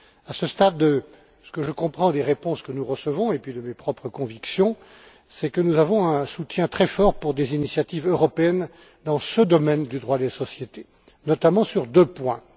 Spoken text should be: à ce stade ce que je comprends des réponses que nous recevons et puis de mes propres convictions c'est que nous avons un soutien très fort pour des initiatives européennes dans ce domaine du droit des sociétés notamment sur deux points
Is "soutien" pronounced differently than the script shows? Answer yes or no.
no